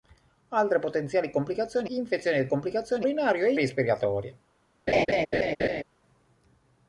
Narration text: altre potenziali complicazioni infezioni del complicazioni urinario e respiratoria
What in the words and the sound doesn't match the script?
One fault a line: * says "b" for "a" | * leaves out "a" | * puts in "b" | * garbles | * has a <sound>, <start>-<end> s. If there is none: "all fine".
* has a laugh, 4.9-5.8 s